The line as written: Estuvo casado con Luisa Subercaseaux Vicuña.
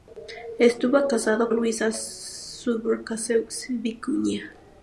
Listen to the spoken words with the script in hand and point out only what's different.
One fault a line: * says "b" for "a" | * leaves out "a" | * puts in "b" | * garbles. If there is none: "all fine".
* leaves out "con"